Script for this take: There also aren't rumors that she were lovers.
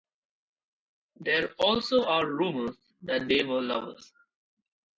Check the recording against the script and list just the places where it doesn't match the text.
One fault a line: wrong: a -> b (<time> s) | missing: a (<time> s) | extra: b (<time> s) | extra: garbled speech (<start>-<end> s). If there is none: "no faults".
wrong: aren't -> are (2.0 s)
wrong: she -> they (3.3 s)